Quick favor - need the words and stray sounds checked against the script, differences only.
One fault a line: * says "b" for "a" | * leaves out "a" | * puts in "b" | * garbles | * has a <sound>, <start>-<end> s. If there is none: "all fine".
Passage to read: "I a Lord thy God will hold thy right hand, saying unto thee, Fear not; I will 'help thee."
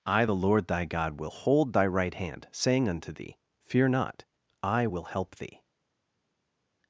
* says "the" for "a"